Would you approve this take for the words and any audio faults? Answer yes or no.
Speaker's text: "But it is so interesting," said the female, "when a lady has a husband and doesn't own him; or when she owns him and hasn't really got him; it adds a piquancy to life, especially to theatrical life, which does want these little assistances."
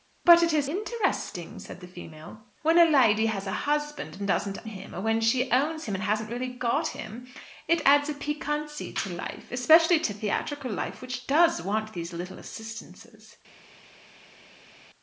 no